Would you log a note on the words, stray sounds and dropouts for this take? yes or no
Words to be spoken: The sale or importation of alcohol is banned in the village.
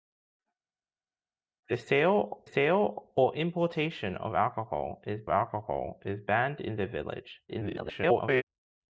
yes